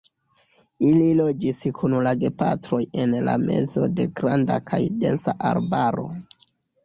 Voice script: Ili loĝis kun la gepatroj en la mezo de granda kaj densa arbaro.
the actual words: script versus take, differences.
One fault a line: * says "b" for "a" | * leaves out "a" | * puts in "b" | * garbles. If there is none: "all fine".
all fine